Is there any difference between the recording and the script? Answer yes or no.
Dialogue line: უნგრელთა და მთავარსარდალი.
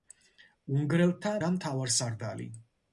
no